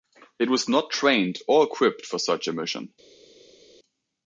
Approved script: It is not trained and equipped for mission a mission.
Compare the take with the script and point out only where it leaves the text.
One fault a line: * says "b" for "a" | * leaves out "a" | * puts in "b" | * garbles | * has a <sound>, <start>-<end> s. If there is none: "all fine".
* says "was" for "is"
* says "or" for "and"
* says "such" for "mission"